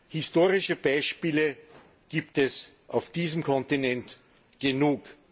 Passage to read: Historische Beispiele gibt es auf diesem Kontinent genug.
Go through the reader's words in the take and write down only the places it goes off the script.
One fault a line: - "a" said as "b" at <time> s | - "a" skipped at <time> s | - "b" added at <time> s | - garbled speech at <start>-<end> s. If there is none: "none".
none